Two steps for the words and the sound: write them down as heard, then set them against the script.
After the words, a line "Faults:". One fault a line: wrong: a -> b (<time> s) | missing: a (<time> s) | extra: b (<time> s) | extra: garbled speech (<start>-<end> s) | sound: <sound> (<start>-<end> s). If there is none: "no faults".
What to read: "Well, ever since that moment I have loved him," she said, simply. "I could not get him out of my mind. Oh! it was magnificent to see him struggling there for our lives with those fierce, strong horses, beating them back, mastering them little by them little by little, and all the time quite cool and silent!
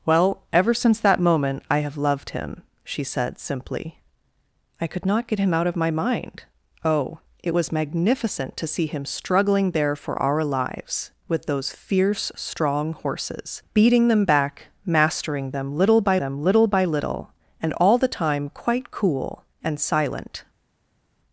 "Well, ever since that moment I have loved him," she said, simply. "I could not get him out of my mind. Oh! it was magnificent to see him struggling there for our lives with those fierce, strong horses, beating them back, mastering them little by them little by little, and all the time quite cool and silent!
Faults:
no faults